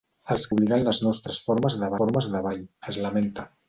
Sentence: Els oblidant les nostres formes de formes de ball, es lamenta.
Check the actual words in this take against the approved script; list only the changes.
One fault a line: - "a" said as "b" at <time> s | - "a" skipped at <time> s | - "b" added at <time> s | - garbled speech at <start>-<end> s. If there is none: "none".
none